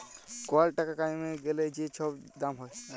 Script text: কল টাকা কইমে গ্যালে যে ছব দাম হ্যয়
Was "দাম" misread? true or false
false